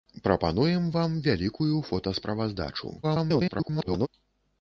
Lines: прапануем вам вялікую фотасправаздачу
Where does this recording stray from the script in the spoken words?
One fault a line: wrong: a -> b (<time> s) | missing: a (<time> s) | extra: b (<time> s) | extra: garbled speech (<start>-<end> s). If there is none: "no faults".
extra: garbled speech (3.0-4.1 s)